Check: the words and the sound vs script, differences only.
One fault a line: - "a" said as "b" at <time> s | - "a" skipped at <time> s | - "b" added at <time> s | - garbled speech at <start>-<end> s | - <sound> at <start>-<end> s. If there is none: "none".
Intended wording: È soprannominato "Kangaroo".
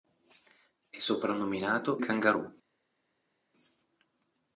none